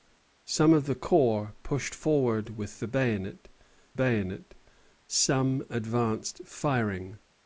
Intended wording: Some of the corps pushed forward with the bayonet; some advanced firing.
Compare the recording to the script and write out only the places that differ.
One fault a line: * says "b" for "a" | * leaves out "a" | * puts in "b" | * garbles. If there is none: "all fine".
* puts in "bayonet"